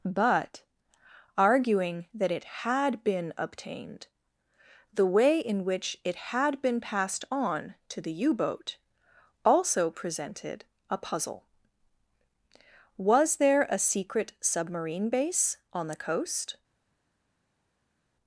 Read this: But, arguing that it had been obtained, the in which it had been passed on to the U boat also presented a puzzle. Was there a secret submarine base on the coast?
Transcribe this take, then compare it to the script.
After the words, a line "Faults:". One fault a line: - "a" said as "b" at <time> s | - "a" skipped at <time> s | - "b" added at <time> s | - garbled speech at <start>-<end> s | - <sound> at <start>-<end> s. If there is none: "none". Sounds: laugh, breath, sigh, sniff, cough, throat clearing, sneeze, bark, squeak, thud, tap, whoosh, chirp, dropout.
But, arguing that it had been obtained, the way in which it had been passed on to the U boat also presented a puzzle. Was there a secret submarine base on the coast?
Faults:
- "way" added at 5.1 s